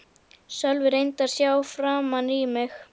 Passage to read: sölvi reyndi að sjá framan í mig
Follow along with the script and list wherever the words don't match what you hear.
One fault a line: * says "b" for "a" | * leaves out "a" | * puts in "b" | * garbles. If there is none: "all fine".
all fine